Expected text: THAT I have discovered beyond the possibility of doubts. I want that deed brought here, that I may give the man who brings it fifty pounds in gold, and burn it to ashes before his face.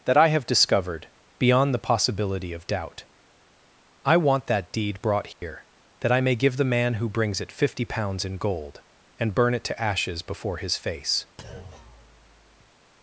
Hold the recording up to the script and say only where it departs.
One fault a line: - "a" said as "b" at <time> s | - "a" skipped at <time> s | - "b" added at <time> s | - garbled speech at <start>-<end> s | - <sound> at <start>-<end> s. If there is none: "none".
- "doubts" said as "doubt" at 2.6 s
- dropout at 5.3-5.4 s
- thud at 11.4-12.7 s